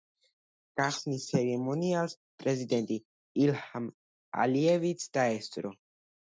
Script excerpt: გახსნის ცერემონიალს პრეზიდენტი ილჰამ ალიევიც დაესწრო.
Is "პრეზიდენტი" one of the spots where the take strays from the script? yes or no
no